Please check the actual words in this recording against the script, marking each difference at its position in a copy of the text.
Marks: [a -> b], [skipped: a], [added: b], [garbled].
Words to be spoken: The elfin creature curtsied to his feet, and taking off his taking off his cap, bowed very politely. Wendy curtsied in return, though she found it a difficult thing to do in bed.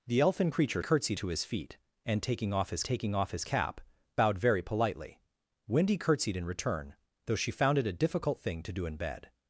The elfin creature curtsied to his feet, and taking off his taking off his cap, bowed very politely. Wendy curtsied in return, though she found it a difficult thing to do in bed.